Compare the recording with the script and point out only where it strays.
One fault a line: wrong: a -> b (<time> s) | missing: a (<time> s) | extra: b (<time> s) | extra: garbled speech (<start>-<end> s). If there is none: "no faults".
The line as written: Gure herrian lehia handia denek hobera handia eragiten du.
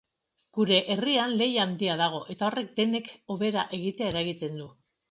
extra: dago eta horrek (2.0 s)
wrong: handia -> egitea (3.8 s)